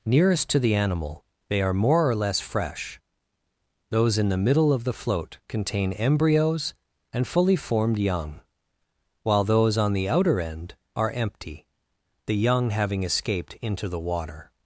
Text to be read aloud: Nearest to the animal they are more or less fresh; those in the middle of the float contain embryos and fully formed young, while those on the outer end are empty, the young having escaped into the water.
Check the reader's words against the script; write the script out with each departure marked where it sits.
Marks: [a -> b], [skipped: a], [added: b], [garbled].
Nearest to the animal they are more or less fresh; those in the middle of the float contain embryos and fully formed young, while those on the outer end are empty, the young having escaped into the water.